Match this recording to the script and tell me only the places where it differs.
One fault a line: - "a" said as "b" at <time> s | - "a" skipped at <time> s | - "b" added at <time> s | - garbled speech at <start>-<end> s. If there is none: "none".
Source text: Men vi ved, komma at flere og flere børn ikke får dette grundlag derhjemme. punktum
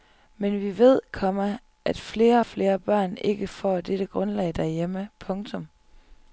none